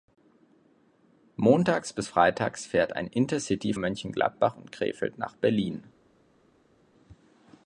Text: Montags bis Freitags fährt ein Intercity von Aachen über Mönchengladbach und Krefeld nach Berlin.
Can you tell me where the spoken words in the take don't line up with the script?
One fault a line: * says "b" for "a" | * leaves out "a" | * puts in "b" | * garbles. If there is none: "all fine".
* leaves out "von Aachen über"